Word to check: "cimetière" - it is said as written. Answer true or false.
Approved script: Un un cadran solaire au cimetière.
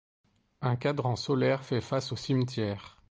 true